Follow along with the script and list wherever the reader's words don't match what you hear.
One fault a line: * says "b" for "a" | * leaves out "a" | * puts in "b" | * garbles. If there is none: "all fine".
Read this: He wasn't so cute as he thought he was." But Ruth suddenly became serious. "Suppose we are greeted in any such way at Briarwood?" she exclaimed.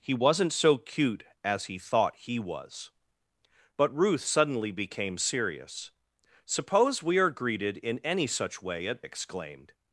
* leaves out "Briarwood she"